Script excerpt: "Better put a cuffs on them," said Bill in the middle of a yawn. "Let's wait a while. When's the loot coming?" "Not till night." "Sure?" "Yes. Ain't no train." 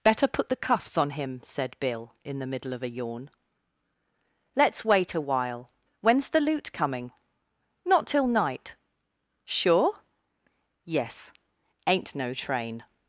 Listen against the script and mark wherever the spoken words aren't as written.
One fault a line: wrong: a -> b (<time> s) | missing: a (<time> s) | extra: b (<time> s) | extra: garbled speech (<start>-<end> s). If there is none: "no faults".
wrong: a -> the (0.5 s)
wrong: them -> him (1.1 s)